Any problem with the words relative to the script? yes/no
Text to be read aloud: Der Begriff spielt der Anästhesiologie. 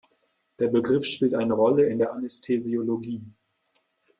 yes